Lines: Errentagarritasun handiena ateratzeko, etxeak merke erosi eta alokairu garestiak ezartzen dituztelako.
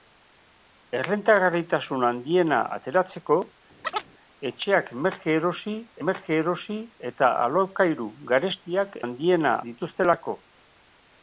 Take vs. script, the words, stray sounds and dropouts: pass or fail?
fail